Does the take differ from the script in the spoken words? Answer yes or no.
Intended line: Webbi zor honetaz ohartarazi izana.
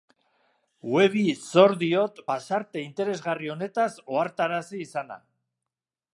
yes